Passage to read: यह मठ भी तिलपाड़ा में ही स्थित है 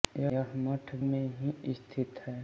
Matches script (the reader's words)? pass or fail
fail